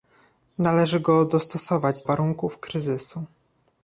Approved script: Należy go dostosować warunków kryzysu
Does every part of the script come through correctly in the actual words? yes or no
yes